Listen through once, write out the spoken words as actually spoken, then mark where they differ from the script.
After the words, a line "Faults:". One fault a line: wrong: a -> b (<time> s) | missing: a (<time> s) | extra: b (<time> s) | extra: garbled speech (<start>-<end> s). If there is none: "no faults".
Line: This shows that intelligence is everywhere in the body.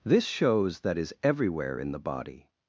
This shows that is everywhere in the body.
Faults:
missing: intelligence (1.0 s)